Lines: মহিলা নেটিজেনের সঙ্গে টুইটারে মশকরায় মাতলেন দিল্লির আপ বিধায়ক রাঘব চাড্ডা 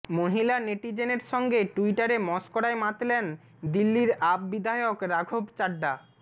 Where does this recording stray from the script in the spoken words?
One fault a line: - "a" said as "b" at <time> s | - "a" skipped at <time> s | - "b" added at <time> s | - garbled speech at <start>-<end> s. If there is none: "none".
none